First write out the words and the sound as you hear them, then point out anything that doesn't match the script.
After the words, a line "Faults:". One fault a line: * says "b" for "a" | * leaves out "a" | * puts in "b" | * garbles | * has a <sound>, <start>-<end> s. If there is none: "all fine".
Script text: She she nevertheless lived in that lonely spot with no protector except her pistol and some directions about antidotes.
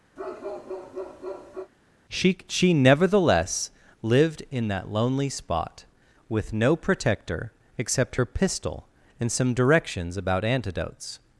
She she nevertheless lived in that lonely spot with no protector except her pistol and some directions about antidotes.
Faults:
* has a bark, 0.2-1.7 s